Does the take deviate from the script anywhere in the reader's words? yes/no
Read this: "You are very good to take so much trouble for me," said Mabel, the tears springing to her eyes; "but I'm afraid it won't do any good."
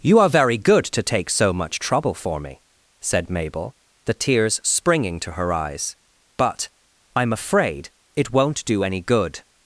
no